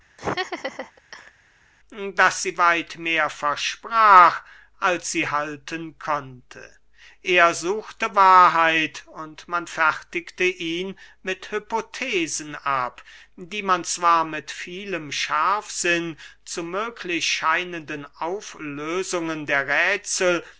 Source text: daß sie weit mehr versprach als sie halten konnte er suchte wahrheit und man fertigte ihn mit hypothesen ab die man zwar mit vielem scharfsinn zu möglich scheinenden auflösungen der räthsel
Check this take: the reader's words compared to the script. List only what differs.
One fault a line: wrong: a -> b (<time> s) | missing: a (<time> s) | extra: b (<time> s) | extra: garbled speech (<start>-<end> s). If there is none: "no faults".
no faults